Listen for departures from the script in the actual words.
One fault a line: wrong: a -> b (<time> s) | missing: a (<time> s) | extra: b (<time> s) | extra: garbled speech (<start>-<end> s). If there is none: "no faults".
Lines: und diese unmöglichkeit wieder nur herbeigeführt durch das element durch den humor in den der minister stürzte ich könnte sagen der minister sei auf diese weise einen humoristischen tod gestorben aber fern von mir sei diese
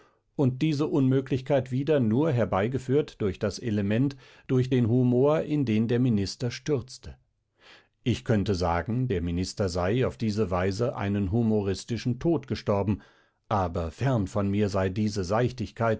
no faults